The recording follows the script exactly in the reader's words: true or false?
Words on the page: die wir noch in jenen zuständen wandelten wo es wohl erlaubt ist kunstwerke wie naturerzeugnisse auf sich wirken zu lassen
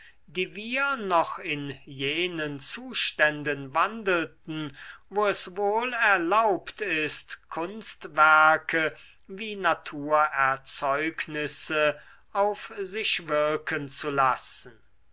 true